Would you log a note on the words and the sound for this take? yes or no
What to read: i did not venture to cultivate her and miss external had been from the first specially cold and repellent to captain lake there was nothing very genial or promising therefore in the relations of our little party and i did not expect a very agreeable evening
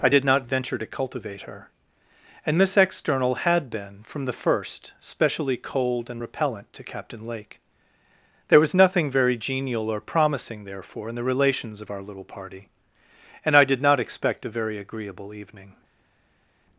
no